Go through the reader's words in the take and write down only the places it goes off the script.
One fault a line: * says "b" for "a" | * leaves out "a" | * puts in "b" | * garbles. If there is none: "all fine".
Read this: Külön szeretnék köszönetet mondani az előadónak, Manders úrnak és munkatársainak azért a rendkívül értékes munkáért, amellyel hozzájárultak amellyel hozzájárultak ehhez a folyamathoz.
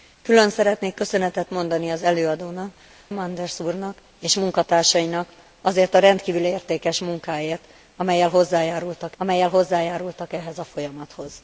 all fine